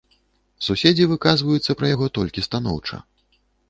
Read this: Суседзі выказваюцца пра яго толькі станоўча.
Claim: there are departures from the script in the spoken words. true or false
false